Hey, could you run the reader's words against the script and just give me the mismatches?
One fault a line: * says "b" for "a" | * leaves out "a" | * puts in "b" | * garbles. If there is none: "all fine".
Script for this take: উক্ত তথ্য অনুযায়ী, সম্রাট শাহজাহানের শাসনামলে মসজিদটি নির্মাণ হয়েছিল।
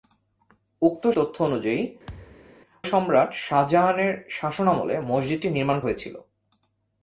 all fine